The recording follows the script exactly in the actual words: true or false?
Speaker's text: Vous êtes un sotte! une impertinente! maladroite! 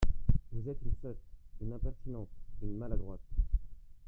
false